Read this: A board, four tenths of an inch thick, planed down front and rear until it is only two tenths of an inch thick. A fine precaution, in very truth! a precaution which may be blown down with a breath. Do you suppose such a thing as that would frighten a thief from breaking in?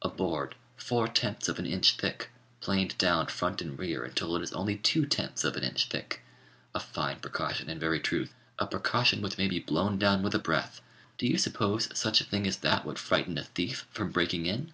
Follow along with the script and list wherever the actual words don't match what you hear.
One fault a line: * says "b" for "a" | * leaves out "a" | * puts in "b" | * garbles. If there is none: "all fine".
all fine